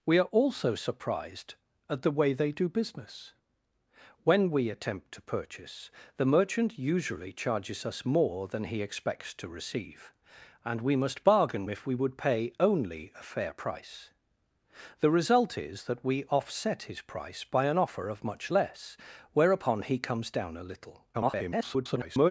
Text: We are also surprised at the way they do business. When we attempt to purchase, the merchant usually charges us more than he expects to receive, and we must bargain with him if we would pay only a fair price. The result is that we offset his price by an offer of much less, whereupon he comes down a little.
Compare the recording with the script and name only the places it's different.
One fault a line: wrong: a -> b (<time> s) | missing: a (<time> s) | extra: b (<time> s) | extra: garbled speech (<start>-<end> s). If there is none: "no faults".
missing: with him (11.7 s)
extra: garbled speech (21.1-22.3 s)